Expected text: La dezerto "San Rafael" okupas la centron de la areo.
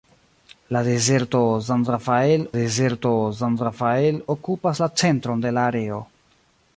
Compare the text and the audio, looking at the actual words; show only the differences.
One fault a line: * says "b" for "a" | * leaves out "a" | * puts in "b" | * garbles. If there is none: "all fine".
* puts in "dezerto San Rafael"